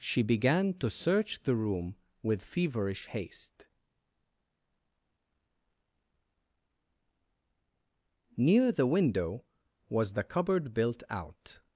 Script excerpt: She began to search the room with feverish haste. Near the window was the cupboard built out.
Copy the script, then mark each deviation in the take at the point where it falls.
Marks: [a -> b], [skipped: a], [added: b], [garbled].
She began to search the room with feverish haste. Near the window was the cupboard built out.